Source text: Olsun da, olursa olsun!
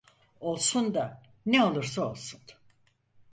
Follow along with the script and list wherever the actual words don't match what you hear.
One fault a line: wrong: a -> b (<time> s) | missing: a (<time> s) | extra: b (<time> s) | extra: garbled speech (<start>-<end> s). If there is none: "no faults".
extra: ne (1.4 s)